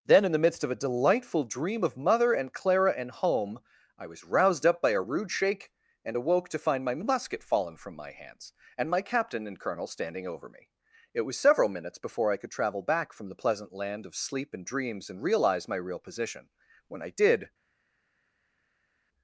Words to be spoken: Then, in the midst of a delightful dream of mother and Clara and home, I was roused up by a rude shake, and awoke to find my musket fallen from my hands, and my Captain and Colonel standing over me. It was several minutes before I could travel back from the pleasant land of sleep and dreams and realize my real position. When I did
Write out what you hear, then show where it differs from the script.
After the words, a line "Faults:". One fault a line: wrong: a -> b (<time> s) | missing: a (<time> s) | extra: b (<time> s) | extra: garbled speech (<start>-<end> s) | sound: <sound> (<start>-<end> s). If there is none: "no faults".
Then, in the midst of a delightful dream of mother and Clara and home, I was roused up by a rude shake, and awoke to find my musket fallen from my hands, and my Captain and Colonel standing over me. It was several minutes before I could travel back from the pleasant land of sleep and dreams and realize my real position. When I did
Faults:
no faults